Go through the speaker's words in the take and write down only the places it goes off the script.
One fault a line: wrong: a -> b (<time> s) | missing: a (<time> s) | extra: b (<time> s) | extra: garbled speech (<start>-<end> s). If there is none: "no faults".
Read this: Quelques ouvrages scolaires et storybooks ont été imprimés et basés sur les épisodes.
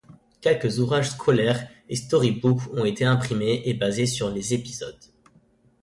no faults